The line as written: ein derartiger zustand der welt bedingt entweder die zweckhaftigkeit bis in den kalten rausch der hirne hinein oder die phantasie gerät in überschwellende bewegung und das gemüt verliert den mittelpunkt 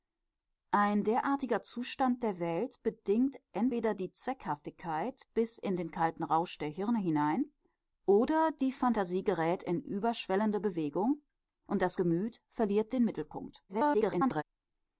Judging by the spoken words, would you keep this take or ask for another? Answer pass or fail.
fail